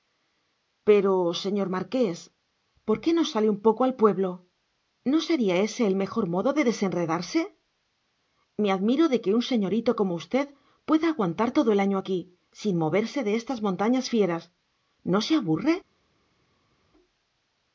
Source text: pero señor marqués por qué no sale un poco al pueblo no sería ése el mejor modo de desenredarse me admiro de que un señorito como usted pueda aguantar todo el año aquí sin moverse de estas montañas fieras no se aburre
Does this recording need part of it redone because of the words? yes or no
no